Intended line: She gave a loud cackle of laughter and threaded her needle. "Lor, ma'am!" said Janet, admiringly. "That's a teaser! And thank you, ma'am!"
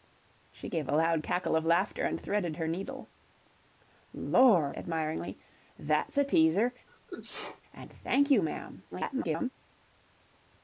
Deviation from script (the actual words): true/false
true